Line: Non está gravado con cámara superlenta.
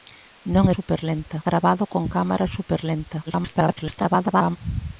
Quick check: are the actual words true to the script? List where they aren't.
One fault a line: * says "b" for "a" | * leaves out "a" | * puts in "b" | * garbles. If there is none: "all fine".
* says "superlenta" for "está"
* garbles